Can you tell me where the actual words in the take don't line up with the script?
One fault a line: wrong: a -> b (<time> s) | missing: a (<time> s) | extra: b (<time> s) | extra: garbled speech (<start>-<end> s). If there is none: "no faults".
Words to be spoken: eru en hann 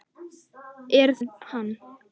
no faults